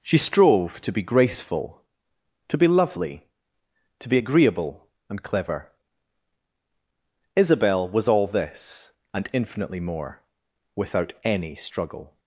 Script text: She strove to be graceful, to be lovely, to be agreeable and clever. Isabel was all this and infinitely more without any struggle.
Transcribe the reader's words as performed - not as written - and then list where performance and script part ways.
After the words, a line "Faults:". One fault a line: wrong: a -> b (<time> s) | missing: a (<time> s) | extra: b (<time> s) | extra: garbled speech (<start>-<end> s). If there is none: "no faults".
She strove to be graceful, to be lovely, to be agreeable and clever. Isabel was all this and infinitely more without any struggle.
Faults:
no faults